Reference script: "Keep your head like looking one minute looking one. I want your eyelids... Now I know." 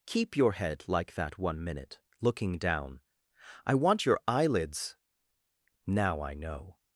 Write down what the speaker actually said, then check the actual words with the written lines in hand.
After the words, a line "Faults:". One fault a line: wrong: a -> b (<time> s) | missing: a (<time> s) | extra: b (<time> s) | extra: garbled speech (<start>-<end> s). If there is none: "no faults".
"Keep your head like that one minute looking down. I want your eyelids... Now I know."
Faults:
wrong: looking -> that (1.1 s)
wrong: one -> down (2.6 s)